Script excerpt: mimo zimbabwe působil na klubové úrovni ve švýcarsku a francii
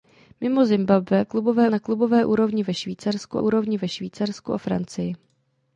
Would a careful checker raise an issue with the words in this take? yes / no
yes